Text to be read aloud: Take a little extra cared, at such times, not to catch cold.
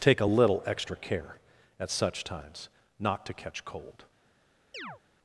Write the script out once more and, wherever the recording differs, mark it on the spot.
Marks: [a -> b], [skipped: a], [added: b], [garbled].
Take a little extra [cared, -> care] at such times, not to catch cold.